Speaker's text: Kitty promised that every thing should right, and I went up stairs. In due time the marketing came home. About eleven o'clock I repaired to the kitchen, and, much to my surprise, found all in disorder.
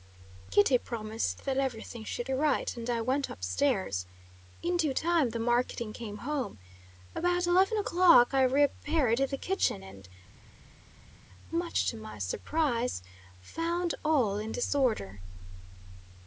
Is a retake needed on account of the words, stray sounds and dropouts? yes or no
no